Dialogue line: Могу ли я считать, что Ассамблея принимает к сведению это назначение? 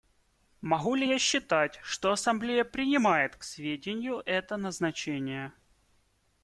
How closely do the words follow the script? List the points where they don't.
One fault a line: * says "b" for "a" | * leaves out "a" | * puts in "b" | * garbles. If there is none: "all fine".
all fine